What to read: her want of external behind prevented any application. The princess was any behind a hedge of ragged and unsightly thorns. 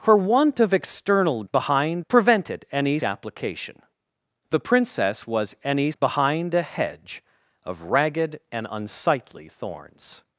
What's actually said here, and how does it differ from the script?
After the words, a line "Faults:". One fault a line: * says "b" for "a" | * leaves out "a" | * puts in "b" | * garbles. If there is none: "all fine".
her want of external behind prevented any application. The princess was any behind a hedge of ragged and unsightly thorns.
Faults:
all fine